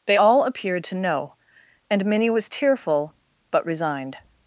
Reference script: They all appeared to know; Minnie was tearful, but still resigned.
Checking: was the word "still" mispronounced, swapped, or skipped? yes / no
yes